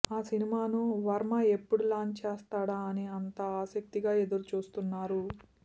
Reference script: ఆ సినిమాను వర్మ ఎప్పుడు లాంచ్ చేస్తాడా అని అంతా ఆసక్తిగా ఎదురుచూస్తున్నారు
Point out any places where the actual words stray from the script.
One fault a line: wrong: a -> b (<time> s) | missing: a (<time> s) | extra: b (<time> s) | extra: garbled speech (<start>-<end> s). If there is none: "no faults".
no faults